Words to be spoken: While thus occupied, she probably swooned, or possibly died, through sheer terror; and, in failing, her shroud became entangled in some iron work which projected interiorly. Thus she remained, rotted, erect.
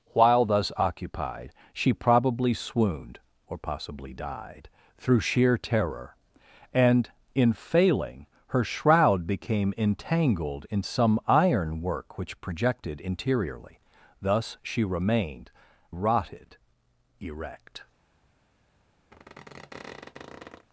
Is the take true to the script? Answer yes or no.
yes